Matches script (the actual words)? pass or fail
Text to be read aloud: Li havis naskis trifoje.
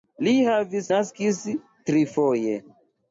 pass